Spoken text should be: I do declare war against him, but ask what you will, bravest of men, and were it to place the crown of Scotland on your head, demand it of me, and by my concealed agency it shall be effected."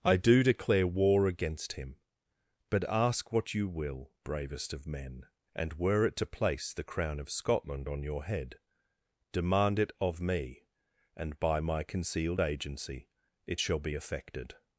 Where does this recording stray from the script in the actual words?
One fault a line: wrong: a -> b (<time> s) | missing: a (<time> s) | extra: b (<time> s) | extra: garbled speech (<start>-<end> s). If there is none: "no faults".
no faults